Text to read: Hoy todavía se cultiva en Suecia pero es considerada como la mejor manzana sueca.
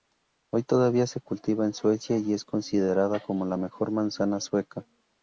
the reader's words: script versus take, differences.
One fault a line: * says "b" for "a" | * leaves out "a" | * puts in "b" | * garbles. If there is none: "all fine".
* says "y" for "pero"